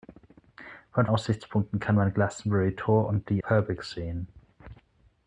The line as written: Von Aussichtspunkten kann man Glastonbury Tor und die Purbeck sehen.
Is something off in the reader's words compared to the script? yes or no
no